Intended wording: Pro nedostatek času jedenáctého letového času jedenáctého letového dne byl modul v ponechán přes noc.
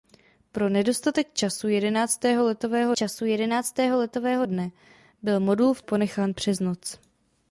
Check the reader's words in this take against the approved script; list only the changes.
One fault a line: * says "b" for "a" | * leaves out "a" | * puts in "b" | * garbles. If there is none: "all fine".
all fine